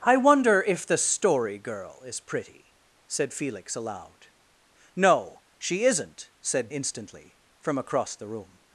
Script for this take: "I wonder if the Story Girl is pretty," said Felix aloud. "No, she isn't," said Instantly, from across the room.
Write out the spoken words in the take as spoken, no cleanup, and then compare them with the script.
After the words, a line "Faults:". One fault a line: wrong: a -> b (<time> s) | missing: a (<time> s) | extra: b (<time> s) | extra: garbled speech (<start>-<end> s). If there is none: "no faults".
"I wonder if the Story Girl is pretty," said Felix aloud. "No, she isn't," said Instantly, from across the room.
Faults:
no faults